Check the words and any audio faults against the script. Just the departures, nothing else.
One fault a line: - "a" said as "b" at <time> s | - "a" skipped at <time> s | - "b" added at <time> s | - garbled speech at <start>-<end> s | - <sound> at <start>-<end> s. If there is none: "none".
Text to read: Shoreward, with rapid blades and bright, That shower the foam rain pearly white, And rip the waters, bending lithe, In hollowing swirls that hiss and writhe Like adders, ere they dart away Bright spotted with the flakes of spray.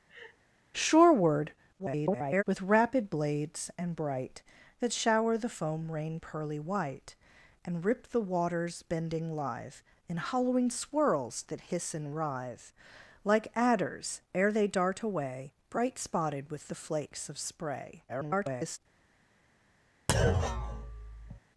- laugh at 0.1-0.4 s
- garbled speech at 1.8-2.4 s
- garbled speech at 18.1-18.8 s
- thud at 20.1-21.4 s